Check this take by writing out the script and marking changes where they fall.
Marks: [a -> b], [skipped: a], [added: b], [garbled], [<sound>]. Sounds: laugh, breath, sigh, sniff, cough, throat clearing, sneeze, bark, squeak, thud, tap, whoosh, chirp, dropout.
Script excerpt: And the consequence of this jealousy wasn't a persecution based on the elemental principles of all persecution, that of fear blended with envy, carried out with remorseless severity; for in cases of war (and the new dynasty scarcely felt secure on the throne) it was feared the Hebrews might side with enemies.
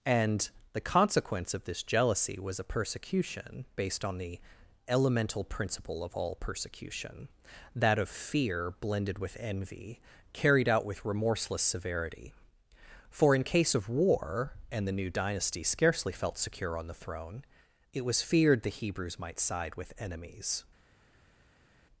And the consequence of this jealousy [wasn't -> was] a persecution based on the elemental [principles -> principle] of all persecution, that of fear blended with envy, carried out with remorseless severity; for in [cases -> case] of war (and the new dynasty scarcely felt secure on the throne) it was feared the Hebrews might side with enemies.